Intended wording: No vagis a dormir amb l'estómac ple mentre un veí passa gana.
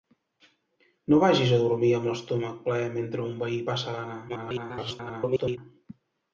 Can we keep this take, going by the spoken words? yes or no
no